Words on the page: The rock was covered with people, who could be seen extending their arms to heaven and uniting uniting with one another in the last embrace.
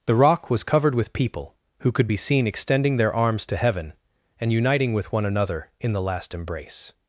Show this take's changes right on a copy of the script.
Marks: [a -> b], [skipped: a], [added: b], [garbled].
The rock was covered with people, who could be seen extending their arms to heaven and uniting [skipped: uniting] with one another in the last embrace.